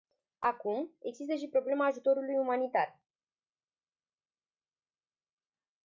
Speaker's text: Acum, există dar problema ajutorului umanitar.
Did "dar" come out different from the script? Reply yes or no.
yes